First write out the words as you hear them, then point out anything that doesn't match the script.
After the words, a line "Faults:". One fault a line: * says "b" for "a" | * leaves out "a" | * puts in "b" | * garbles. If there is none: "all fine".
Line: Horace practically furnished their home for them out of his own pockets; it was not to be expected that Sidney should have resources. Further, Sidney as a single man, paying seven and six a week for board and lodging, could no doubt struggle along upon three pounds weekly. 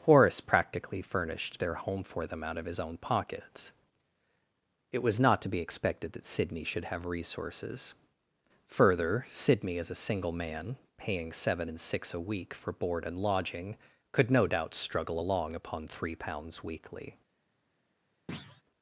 Horace practically furnished their home for them out of his own pockets; it was not to be expected that Sidney should have resources. Further, Sidney as a single man, paying seven and six a week for board and lodging, could no doubt struggle along upon three pounds weekly.
Faults:
all fine